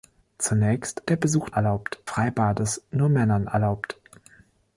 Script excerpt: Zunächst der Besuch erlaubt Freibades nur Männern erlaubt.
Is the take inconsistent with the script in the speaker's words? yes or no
no